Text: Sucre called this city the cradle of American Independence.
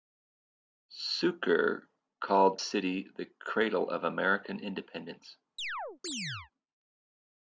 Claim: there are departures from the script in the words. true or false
true